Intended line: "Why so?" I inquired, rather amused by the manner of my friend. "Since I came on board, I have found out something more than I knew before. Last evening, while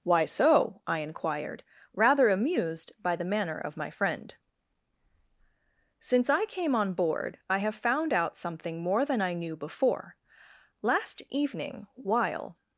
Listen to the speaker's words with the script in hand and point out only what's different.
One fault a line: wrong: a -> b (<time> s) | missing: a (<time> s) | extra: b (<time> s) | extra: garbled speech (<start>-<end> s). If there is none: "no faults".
no faults